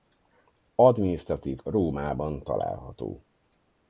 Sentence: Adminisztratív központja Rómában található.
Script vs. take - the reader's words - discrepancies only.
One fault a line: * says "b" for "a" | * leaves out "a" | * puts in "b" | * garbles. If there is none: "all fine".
* leaves out "központja"